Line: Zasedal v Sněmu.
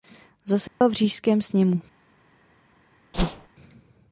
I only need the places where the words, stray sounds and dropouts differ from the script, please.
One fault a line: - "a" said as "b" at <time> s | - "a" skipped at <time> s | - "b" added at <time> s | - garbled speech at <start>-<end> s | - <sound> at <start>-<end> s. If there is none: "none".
- dropout at 0.7-0.8 s
- "Říšském" added at 0.9 s
- whoosh at 3.1-3.5 s